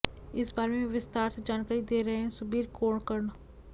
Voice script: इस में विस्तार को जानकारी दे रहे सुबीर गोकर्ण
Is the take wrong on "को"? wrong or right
wrong